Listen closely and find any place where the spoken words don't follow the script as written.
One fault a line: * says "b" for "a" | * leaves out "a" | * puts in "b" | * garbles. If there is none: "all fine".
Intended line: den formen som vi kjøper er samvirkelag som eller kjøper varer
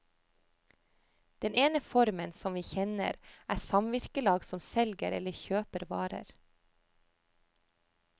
* puts in "ene"
* says "kjenner" for "kjøper"
* puts in "selger"